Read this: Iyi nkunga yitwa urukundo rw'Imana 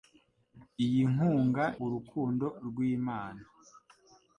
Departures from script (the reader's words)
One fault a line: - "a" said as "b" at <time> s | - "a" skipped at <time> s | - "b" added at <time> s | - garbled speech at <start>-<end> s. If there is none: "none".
- "yitwa" skipped at 1.6 s